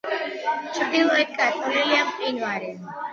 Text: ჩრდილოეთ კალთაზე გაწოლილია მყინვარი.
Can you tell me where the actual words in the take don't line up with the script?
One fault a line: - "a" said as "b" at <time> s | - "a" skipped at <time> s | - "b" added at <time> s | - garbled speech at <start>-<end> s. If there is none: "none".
- "კალთაზე" skipped at 1.4 s